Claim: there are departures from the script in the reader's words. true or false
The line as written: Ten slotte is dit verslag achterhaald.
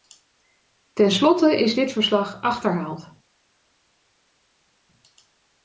false